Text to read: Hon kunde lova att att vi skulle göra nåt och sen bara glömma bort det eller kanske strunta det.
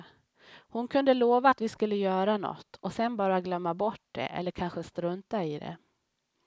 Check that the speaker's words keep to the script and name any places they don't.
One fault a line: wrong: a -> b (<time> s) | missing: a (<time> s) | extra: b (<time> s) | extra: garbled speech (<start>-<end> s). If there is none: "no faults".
missing: att (1.6 s)
extra: i (5.4 s)